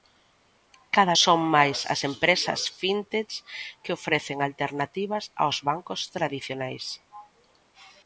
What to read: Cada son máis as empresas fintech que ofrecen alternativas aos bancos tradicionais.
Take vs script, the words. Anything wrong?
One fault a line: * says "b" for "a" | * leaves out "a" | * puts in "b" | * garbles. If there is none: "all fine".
all fine